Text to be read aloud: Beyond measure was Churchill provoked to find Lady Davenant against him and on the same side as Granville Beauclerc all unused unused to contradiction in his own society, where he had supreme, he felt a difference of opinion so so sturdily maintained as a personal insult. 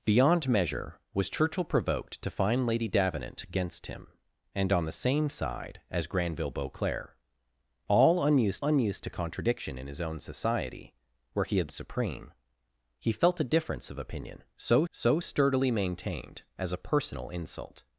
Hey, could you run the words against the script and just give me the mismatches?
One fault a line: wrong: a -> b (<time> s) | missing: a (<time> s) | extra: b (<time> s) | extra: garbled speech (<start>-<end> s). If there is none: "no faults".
no faults